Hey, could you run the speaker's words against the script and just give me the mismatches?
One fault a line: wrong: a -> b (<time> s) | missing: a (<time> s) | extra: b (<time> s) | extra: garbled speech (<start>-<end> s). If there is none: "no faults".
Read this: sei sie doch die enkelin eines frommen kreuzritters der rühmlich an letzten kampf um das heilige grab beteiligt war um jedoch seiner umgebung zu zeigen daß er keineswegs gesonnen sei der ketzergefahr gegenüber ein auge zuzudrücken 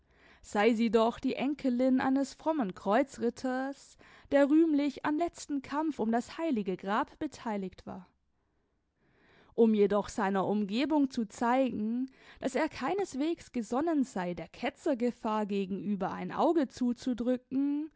no faults